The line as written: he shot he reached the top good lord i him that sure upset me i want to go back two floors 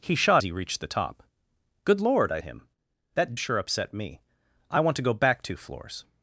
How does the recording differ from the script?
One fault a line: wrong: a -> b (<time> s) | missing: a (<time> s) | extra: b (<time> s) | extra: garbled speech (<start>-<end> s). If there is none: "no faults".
no faults